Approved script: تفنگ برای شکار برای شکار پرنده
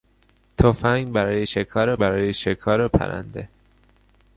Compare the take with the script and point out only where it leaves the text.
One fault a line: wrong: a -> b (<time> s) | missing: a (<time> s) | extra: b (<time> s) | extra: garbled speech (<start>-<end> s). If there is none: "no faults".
no faults